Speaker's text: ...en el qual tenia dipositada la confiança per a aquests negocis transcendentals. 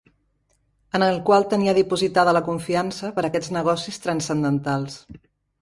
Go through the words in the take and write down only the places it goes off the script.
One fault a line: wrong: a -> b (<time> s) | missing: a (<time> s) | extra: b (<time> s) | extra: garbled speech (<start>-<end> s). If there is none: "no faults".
no faults